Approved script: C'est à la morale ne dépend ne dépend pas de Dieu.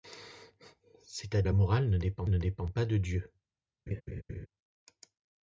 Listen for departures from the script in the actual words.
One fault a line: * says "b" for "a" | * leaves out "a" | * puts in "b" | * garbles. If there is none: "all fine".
all fine